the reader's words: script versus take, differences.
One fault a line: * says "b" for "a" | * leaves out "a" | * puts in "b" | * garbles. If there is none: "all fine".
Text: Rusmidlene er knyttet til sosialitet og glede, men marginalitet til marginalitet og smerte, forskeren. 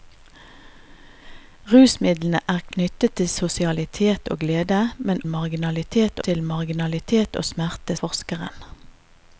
all fine